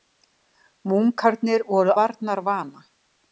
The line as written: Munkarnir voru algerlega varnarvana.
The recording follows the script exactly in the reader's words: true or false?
false